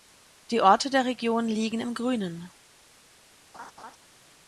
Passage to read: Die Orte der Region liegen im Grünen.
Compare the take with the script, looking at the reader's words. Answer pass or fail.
pass